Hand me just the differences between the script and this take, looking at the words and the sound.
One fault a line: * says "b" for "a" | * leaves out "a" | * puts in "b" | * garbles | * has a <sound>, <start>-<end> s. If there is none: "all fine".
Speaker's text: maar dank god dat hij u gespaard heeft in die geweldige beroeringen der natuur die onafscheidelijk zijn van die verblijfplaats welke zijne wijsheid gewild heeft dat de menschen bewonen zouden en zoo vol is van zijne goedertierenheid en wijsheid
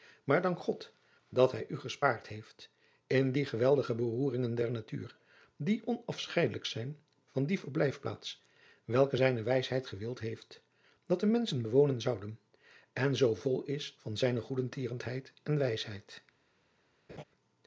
* has a laugh, 17.1-17.2 s